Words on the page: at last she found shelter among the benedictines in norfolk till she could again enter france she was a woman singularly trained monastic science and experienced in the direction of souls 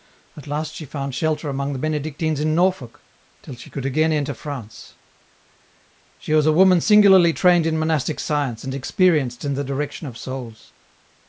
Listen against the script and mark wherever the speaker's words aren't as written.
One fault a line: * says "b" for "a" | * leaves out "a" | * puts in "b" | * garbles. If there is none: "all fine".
* puts in "in"